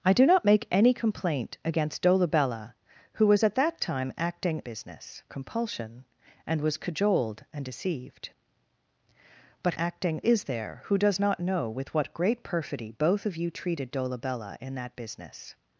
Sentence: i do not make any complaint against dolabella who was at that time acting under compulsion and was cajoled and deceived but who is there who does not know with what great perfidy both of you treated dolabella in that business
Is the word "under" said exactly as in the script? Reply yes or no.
no